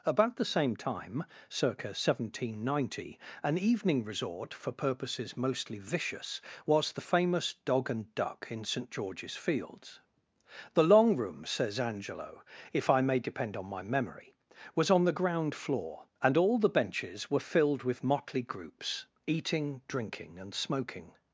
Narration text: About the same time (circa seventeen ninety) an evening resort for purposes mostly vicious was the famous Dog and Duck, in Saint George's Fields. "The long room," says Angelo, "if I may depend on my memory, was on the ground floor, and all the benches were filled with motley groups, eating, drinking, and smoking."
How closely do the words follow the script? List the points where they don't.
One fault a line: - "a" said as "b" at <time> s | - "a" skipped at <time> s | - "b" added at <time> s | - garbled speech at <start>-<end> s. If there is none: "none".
none